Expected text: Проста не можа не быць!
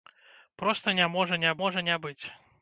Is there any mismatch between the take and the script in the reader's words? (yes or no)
yes